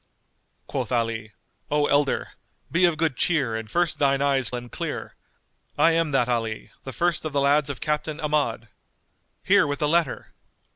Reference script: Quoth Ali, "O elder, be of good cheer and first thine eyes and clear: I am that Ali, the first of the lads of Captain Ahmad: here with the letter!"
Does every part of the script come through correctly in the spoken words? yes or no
yes